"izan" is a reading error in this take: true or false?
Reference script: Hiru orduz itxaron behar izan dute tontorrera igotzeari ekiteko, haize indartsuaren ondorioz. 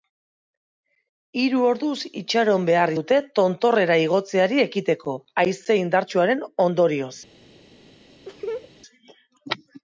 true